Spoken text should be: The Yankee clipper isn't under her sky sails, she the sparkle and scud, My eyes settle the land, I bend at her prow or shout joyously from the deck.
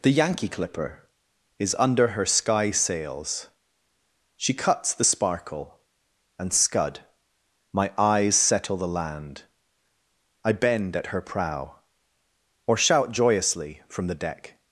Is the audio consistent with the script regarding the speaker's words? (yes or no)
no